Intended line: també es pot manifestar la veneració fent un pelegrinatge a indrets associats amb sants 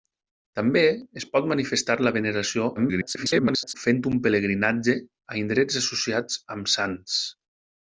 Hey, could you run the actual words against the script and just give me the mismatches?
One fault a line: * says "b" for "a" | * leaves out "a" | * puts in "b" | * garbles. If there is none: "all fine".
* garbles